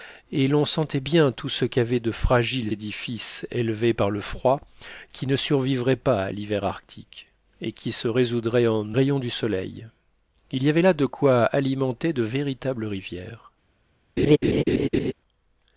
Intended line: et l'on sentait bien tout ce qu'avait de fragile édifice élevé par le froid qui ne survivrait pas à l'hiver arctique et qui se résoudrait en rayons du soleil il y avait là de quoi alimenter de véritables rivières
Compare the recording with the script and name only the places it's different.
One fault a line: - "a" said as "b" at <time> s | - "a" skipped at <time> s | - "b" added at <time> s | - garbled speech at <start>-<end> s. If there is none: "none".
none